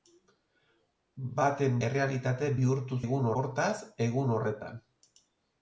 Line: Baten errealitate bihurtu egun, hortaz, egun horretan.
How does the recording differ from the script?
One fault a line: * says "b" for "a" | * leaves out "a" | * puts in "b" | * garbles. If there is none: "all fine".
all fine